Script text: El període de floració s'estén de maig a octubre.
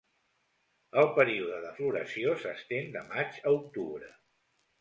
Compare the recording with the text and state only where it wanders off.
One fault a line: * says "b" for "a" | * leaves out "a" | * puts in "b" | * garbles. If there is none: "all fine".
all fine